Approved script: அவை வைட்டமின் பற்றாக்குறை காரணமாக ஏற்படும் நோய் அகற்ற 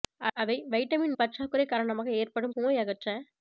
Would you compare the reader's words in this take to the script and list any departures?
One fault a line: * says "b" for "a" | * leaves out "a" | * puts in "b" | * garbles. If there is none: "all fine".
all fine